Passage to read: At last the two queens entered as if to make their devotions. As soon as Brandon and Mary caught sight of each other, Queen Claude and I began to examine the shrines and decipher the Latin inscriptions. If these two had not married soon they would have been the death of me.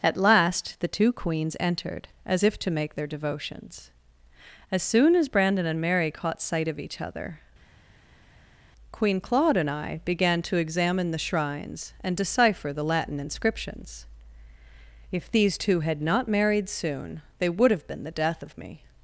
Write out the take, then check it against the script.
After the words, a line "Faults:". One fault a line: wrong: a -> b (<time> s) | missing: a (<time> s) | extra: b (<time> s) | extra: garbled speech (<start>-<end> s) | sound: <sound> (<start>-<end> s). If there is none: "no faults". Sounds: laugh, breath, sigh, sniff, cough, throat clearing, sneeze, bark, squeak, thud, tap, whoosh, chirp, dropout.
At last the two queens entered as if to make their devotions. As soon as Brandon and Mary caught sight of each other, Queen Claude and I began to examine the shrines and decipher the Latin inscriptions. If these two had not married soon they would have been the death of me.
Faults:
no faults